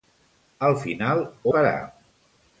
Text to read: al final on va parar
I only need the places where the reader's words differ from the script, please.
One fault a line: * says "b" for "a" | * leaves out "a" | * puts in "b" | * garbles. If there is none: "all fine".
* leaves out "on va"